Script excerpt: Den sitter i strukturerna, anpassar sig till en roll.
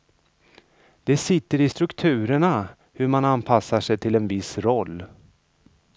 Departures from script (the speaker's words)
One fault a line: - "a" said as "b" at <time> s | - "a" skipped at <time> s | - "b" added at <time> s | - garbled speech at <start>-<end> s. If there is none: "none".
- "Den" said as "Det" at 1.0 s
- "hur man" added at 2.9 s
- "viss" added at 4.3 s